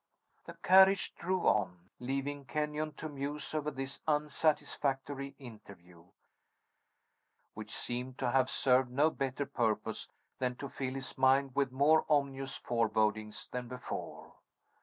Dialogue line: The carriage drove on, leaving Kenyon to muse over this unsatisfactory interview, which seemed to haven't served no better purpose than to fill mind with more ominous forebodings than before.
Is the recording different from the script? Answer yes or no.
yes